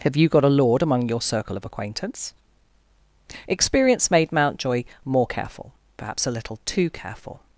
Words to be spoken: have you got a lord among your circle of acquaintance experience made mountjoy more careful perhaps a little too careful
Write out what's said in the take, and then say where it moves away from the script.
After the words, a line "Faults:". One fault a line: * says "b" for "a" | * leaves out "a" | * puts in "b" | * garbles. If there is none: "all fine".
have you got a lord among your circle of acquaintance experience made mountjoy more careful perhaps a little too careful
Faults:
all fine